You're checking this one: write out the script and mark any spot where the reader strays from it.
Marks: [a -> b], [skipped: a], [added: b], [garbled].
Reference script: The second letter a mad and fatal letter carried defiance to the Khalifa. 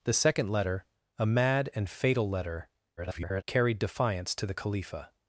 The second letter a mad and fatal letter [garbled] carried defiance to the Khalifa.